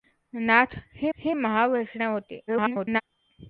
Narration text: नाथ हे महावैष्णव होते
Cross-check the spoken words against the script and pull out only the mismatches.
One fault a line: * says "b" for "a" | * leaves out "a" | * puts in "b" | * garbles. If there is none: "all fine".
* puts in "हे"
* garbles